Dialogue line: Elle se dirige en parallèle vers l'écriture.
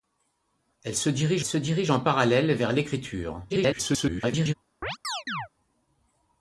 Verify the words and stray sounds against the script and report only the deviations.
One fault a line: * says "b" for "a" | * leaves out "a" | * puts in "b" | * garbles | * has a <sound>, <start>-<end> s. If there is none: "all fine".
* puts in "se dirige"
* garbles
* has a chirp, 4.8-5.5 s